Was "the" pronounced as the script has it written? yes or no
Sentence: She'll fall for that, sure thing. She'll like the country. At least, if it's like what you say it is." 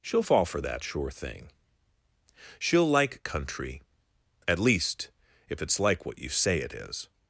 no